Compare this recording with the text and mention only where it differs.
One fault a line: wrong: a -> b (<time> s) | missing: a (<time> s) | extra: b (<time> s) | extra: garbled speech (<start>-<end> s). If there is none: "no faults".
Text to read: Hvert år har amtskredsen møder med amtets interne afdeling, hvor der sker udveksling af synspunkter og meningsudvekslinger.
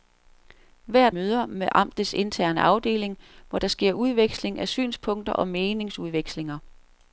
missing: år har amtskredsen (1.1 s)